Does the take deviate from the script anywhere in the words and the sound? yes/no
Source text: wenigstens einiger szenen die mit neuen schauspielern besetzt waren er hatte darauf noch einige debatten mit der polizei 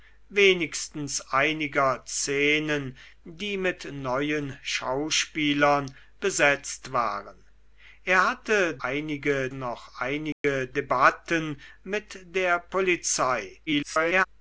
yes